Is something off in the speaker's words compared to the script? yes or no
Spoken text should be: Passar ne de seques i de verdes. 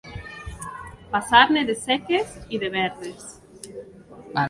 no